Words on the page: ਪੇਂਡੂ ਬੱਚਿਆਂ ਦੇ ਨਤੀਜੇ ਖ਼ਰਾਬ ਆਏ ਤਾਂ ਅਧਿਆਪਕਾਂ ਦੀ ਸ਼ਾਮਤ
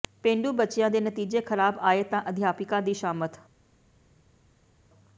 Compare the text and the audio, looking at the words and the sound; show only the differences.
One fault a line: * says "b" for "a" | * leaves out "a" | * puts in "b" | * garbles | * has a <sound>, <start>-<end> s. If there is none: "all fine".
all fine